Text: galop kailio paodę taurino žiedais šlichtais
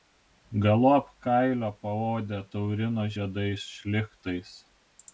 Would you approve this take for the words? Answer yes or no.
yes